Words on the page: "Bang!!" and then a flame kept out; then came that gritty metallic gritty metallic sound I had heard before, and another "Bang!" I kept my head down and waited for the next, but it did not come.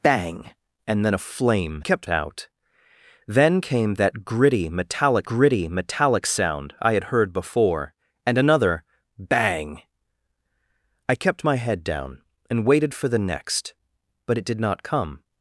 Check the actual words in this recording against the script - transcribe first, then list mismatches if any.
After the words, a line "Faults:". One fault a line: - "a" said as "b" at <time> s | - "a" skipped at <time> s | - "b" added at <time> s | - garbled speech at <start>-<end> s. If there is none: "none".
"Bang!!" and then a flame kept out; then came that gritty metallic gritty metallic sound I had heard before, and another "Bang!" I kept my head down and waited for the next, but it did not come.
Faults:
none